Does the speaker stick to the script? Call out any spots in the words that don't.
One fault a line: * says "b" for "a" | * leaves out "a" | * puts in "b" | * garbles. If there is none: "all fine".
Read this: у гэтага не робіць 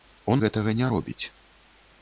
all fine